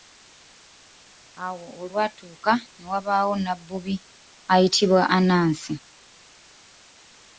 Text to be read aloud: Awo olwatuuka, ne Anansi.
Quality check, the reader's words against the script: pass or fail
fail